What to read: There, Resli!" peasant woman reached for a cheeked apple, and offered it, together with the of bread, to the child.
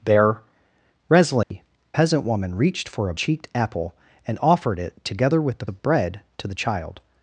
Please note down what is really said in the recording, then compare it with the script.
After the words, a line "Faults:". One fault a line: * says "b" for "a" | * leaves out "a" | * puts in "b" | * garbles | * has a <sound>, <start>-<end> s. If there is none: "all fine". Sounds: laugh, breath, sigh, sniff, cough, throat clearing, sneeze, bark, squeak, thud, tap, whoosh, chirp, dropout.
There, Resli!" peasant woman reached for a cheeked apple, and offered it, together with the of bread, to the child.
Faults:
* has a dropout, 1.4-1.5 s